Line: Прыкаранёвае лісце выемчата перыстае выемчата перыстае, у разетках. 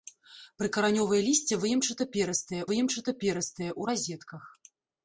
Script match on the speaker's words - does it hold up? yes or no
yes